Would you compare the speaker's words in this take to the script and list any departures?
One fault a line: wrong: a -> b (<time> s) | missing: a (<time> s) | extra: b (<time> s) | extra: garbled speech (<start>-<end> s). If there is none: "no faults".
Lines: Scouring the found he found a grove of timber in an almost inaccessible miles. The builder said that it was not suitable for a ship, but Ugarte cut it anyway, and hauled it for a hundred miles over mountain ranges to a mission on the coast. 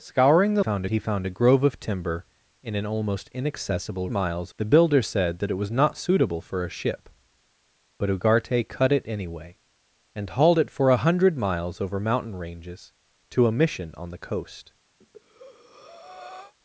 no faults